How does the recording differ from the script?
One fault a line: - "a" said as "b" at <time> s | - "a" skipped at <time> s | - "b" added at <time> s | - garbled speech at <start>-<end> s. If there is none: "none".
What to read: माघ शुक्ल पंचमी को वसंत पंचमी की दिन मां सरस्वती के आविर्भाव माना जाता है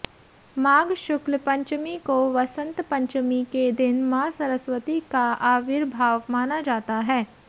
- "की" said as "के" at 3.5 s
- "के" said as "का" at 5.1 s